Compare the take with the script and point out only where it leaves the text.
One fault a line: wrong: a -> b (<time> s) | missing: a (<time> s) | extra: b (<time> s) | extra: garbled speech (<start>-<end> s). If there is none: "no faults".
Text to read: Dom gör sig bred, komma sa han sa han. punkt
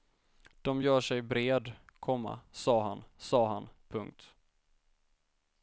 no faults